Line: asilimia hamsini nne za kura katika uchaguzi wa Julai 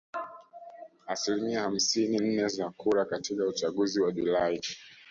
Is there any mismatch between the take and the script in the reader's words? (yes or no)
no